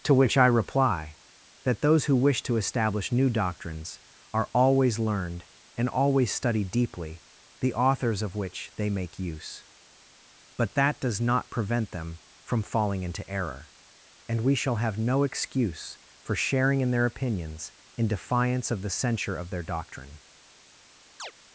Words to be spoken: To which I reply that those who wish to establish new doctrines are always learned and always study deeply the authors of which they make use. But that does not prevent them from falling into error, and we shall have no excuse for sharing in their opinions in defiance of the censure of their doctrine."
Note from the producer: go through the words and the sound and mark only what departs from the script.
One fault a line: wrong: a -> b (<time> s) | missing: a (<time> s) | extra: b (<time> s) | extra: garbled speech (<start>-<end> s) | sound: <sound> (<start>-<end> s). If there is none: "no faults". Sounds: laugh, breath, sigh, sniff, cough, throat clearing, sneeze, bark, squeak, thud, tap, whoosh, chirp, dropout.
sound: chirp (21.2-21.3 s)